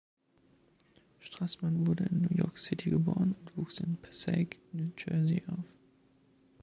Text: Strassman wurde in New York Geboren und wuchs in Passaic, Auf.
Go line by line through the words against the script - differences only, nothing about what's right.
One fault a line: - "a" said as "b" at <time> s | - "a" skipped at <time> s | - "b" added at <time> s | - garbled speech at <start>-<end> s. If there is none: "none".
- "City" added at 2.6 s
- "New Jersey" added at 4.7 s